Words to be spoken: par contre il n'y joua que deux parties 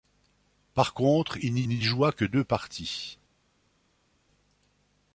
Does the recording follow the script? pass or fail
fail